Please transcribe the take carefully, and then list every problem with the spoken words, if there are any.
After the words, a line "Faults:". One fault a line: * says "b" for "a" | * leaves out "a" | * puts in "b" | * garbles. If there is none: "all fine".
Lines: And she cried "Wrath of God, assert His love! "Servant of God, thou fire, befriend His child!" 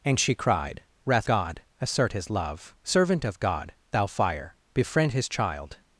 And she cried "Wrath God, assert His love! "Servant of God, thou fire, befriend His child!"
Faults:
* leaves out "of"